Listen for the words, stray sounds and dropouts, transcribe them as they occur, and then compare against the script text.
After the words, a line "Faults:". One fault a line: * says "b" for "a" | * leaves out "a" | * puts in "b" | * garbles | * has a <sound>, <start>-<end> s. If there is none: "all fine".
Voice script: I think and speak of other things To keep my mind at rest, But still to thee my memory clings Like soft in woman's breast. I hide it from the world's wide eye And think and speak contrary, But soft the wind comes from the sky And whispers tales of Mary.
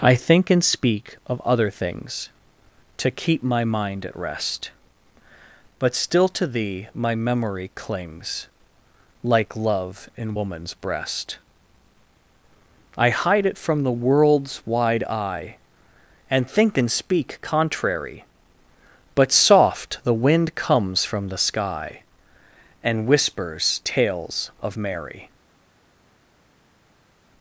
I think and speak of other things To keep my mind at rest, But still to thee my memory clings Like love in woman's breast. I hide it from the world's wide eye And think and speak contrary, But soft the wind comes from the sky And whispers tales of Mary.
Faults:
* says "love" for "soft"